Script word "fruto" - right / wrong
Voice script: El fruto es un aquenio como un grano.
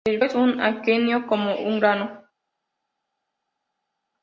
wrong